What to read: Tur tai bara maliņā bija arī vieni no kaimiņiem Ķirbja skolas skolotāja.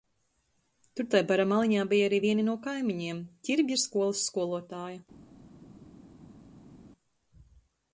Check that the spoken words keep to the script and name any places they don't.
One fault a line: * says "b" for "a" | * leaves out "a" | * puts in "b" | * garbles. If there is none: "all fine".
all fine